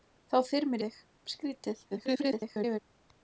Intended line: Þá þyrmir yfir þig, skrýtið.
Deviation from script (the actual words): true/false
true